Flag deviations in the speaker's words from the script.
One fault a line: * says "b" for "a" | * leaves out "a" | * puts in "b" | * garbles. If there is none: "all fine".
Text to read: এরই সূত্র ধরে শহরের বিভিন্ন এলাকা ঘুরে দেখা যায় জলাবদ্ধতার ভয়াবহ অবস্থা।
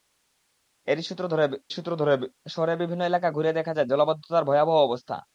* puts in "সূত্র ধরে"